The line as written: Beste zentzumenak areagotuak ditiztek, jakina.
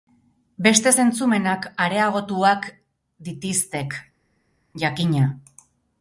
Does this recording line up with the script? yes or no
yes